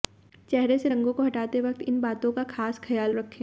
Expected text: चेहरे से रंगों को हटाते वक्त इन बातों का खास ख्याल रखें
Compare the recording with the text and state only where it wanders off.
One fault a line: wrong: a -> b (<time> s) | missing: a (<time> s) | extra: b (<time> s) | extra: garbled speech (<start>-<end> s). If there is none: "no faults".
no faults